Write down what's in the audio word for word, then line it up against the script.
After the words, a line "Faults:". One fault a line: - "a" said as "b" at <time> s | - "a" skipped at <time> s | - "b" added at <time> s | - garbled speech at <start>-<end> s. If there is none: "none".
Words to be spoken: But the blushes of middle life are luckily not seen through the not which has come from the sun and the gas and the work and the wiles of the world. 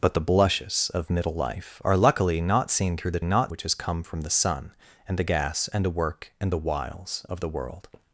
But the blushes of middle life are luckily not seen through the not which has come from the sun and the gas and the work and the wiles of the world.
Faults:
none